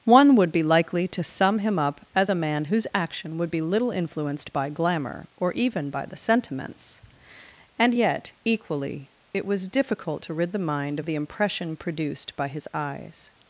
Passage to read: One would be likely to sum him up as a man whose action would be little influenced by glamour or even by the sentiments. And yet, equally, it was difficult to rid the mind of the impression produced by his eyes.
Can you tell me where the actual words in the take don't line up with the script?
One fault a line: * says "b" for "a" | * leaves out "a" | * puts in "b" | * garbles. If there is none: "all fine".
all fine